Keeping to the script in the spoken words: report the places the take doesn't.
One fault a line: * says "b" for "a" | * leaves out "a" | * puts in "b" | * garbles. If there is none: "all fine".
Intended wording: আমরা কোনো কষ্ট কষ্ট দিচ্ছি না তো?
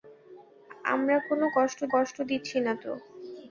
all fine